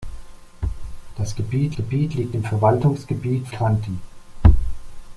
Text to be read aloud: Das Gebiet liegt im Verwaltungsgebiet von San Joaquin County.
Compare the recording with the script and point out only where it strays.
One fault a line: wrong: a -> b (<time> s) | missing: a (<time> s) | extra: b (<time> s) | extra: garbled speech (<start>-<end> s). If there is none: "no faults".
extra: Gebiet (1.7 s)
missing: von San Joaquin (3.5 s)